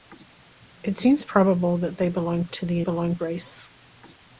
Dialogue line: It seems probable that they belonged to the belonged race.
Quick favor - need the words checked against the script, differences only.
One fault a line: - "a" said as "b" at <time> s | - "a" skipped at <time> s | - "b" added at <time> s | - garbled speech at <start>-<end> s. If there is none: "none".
none